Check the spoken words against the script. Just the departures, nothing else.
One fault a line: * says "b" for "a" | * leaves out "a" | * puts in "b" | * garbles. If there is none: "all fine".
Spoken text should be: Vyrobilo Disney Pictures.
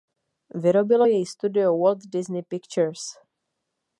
* puts in "jej studio Walt"